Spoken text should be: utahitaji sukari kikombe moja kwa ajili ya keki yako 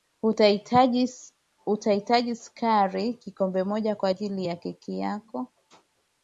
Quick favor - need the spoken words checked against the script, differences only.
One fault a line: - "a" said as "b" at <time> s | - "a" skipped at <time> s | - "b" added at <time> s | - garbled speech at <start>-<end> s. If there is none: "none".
none